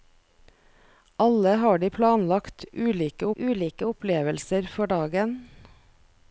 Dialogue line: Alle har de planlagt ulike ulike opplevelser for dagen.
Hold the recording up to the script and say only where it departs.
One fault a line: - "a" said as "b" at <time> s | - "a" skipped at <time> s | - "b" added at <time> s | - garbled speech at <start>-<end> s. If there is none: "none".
none